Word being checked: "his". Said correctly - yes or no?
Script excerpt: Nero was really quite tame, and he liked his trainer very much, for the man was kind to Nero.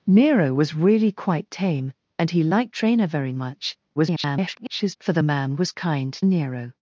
no